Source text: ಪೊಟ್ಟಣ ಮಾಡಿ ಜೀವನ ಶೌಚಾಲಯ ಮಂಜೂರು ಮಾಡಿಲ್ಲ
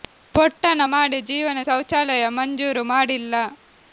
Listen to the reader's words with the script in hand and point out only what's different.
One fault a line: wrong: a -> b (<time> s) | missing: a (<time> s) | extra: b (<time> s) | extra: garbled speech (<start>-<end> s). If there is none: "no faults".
no faults